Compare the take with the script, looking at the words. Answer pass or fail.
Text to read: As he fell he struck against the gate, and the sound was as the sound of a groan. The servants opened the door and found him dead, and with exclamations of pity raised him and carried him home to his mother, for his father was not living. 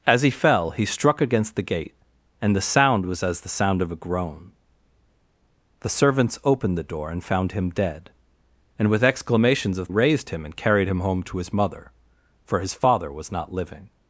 fail